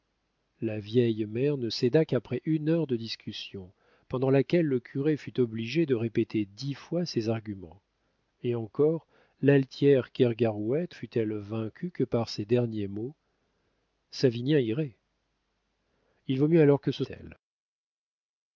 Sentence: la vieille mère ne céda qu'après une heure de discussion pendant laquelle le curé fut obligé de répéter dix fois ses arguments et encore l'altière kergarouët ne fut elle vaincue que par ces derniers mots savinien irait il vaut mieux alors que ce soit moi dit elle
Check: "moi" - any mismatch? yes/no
yes